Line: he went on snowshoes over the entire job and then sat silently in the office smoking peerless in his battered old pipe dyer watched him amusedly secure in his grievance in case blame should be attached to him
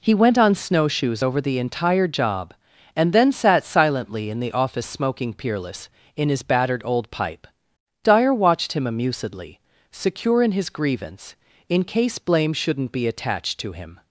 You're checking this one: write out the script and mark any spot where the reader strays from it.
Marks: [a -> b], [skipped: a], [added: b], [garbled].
he went on snowshoes over the entire job and then sat silently in the office smoking peerless in his battered old pipe dyer watched him amusedly secure in his grievance in case blame [should -> shouldn't] be attached to him